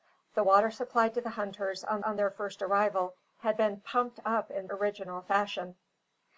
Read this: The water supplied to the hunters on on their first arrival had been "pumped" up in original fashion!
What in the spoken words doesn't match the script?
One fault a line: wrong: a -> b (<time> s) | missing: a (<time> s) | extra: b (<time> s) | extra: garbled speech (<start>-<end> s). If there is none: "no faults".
no faults